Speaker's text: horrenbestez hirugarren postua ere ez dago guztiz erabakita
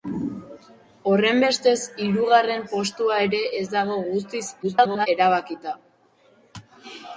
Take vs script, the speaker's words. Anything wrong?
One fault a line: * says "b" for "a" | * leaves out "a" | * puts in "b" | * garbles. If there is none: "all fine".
* garbles